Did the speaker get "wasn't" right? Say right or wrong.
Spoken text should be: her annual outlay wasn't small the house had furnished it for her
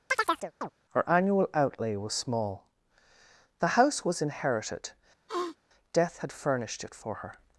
wrong